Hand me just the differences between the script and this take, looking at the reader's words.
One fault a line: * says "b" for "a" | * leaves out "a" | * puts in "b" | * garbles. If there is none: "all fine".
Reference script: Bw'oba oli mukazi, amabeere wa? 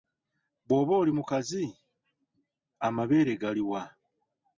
* puts in "gali"